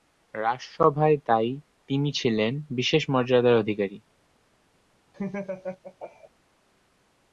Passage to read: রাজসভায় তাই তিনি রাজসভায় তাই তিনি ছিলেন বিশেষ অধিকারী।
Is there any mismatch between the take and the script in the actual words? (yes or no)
yes